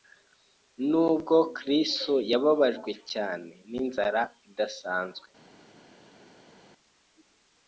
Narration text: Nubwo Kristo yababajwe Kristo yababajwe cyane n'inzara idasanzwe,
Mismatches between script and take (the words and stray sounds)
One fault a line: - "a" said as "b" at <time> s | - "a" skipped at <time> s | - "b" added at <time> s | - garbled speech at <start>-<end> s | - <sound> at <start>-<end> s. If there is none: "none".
- "Kristo yababajwe" skipped at 2.9 s